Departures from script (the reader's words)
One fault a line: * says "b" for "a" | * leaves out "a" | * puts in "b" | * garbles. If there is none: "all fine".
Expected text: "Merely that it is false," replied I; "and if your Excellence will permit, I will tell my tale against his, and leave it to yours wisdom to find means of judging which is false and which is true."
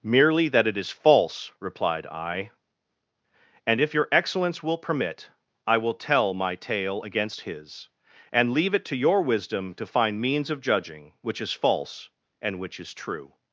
* says "your" for "yours"